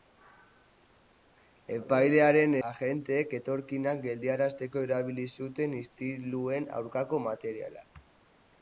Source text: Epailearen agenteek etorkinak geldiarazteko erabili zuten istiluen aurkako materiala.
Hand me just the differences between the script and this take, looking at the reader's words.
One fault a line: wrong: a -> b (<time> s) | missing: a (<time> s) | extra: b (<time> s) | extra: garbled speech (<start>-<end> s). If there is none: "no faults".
no faults